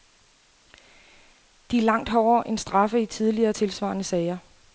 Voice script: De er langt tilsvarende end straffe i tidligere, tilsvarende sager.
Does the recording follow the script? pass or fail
fail